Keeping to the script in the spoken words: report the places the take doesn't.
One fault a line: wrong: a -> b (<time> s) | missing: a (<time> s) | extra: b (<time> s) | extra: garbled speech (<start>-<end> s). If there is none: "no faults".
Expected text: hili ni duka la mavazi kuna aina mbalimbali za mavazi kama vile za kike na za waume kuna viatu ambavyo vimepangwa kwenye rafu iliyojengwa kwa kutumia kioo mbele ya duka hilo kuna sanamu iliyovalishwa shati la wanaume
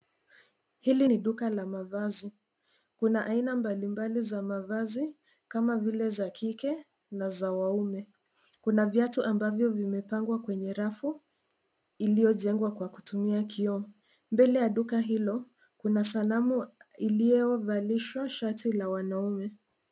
no faults